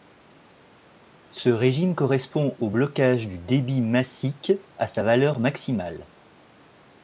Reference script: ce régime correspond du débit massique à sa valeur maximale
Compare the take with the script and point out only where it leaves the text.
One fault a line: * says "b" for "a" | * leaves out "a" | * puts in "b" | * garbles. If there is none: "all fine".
* puts in "au blocage"